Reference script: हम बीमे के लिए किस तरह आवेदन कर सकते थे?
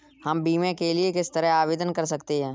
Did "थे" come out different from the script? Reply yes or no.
yes